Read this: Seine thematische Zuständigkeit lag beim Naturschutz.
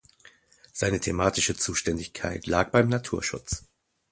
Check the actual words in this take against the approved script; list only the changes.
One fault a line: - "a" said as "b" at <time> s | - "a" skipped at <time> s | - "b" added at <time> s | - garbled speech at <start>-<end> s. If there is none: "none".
none